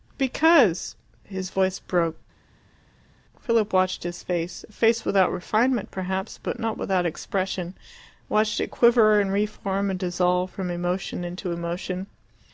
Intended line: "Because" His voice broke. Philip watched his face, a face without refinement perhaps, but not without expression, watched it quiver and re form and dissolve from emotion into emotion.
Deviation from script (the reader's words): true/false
false